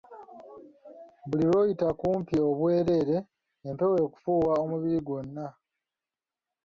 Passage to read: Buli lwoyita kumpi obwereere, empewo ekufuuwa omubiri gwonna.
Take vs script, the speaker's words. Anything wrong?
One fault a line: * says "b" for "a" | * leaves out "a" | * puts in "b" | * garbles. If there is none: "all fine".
all fine